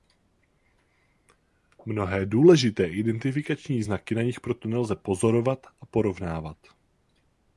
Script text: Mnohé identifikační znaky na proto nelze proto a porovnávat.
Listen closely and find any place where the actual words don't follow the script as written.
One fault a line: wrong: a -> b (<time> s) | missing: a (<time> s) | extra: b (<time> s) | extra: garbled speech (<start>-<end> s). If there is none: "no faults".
extra: důležité (2.2 s)
extra: nich (4.2 s)
wrong: proto -> pozorovat (4.9 s)